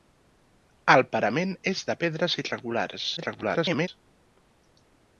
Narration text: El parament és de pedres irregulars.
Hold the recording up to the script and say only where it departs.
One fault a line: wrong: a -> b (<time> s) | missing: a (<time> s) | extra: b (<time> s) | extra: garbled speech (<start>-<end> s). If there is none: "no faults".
extra: garbled speech (3.2-3.9 s)